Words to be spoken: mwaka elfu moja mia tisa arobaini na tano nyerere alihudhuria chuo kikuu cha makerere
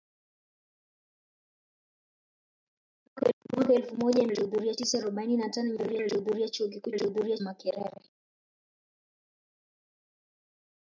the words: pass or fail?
fail